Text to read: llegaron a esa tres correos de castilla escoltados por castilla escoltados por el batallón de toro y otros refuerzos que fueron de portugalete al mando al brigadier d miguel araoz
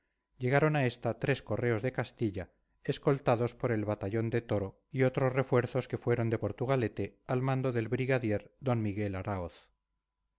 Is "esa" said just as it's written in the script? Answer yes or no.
no